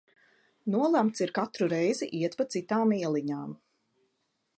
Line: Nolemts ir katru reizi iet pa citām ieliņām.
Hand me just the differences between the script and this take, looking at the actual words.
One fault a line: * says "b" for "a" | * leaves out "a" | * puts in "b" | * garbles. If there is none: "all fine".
all fine